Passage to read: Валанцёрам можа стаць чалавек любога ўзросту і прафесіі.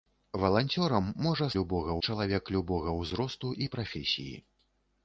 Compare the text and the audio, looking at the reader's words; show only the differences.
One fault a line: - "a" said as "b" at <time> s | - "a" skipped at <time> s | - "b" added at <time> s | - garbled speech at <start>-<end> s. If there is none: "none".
- "стаць" said as "любога" at 1.6 s